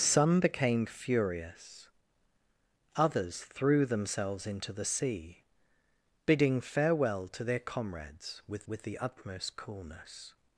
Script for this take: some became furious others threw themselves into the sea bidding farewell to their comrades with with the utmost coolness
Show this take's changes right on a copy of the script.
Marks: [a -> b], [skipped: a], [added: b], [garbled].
some became furious others threw themselves into the sea bidding farewell to their comrades with with the utmost coolness